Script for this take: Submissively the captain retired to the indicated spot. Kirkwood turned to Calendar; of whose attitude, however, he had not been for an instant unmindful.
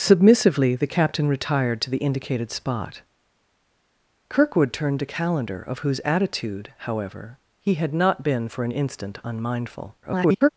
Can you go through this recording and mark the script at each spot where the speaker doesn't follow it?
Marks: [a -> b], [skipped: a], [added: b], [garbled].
Submissively the captain retired to the indicated spot. Kirkwood turned to Calendar; of whose attitude, however, he had not been for an instant unmindful. [garbled]